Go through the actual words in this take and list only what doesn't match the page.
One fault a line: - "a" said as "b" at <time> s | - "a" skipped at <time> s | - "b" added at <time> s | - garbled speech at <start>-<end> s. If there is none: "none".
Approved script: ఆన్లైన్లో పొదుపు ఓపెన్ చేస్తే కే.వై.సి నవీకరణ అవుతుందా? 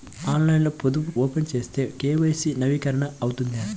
none